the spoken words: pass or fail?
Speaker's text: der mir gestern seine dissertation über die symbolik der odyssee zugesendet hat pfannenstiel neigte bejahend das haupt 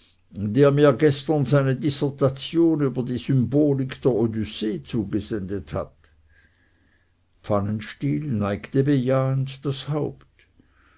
pass